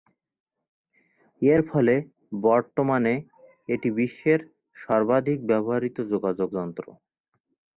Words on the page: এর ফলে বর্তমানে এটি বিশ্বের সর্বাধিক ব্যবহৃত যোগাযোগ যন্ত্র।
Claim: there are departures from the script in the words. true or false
false